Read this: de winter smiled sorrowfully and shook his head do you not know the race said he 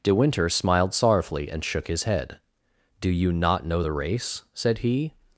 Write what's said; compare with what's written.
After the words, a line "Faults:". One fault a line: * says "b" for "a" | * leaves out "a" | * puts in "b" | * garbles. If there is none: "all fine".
de winter smiled sorrowfully and shook his head do you not know the race said he
Faults:
all fine